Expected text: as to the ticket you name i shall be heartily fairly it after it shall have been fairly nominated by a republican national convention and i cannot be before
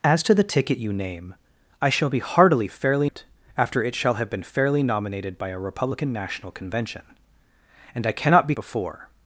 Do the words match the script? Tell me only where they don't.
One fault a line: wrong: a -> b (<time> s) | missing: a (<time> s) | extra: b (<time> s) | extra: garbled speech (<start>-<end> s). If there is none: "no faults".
no faults